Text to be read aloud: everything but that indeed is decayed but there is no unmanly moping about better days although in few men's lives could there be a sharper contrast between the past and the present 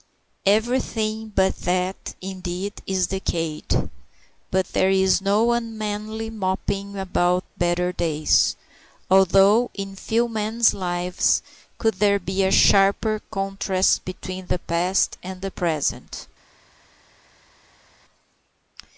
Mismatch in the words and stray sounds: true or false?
false